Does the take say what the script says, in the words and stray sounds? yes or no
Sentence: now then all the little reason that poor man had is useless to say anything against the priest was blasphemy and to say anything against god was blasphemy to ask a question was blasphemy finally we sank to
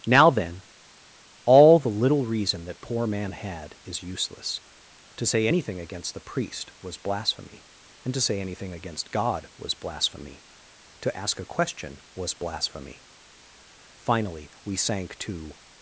yes